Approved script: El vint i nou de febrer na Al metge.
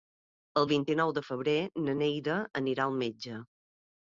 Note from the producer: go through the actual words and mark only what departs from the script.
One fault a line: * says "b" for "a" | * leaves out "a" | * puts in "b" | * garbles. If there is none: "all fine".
* puts in "Neida anirà"